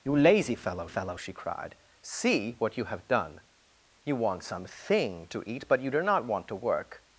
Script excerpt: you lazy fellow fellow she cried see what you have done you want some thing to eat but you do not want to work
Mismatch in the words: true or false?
false